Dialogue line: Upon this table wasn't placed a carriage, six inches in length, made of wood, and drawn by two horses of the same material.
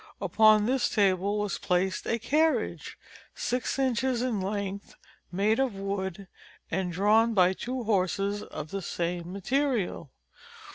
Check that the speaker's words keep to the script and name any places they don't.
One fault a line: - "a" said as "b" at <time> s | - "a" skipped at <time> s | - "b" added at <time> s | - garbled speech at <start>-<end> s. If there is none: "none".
- "wasn't" said as "was" at 1.4 s